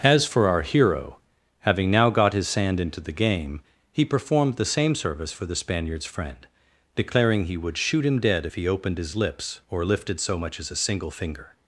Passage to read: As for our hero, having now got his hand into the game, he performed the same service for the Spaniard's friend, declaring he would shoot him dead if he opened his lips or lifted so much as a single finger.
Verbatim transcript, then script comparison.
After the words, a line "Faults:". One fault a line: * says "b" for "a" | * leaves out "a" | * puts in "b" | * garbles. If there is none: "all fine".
As for our hero, having now got his sand into the game, he performed the same service for the Spaniard's friend, declaring he would shoot him dead if he opened his lips or lifted so much as a single finger.
Faults:
* says "sand" for "hand"